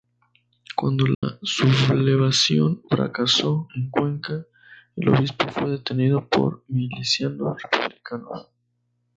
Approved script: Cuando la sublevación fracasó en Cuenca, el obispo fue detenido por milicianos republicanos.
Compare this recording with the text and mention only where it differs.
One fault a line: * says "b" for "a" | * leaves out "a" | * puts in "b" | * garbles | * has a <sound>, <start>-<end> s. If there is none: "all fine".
* has a dropout, 1.1-1.2 s